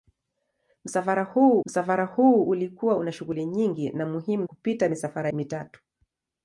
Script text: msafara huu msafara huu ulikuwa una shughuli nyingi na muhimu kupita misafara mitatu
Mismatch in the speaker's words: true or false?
false